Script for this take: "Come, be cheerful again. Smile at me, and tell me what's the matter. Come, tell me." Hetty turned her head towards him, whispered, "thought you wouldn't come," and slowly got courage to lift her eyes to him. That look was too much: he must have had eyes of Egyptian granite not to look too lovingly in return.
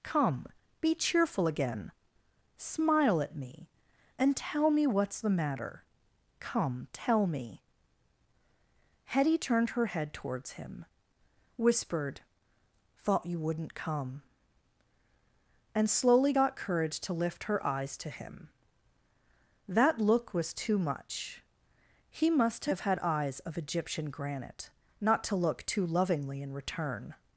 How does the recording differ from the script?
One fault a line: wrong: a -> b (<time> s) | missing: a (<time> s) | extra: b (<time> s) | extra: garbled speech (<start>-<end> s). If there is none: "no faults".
no faults